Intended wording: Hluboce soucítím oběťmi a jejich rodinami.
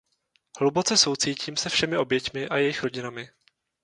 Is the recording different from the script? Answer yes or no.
yes